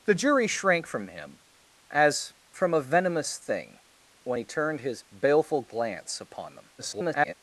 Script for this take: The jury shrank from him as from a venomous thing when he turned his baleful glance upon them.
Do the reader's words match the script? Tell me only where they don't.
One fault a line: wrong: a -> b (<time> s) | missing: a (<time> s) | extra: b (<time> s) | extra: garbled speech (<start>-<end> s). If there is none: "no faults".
extra: garbled speech (6.8-7.3 s)